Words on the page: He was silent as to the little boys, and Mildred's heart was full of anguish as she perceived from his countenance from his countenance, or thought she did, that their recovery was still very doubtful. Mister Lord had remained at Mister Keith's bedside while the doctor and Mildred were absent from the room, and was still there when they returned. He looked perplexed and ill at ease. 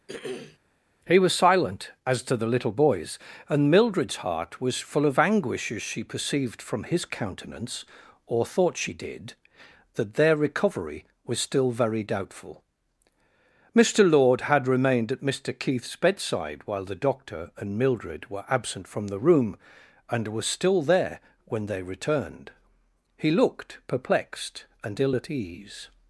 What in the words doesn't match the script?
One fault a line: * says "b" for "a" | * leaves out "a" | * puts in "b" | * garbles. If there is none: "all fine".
* leaves out "from his countenance"